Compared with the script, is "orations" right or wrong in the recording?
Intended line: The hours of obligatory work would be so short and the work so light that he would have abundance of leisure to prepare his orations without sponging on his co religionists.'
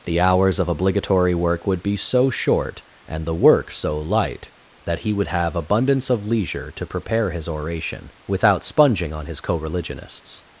wrong